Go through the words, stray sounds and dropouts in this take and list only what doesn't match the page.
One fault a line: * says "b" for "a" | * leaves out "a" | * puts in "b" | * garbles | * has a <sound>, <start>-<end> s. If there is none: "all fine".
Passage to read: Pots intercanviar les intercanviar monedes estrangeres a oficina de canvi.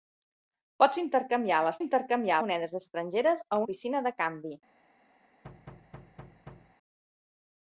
* has a thud, 5.4-6.8 s